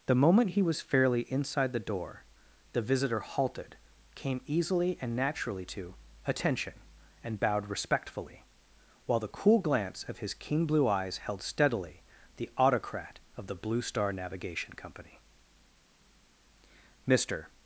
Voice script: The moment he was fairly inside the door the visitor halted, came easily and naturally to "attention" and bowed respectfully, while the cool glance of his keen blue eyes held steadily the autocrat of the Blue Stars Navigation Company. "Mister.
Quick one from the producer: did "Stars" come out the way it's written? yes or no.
no